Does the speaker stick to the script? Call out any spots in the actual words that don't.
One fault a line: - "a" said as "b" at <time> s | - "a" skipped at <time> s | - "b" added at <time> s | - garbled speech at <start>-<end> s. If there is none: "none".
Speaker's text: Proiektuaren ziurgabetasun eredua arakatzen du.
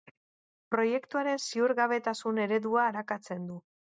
none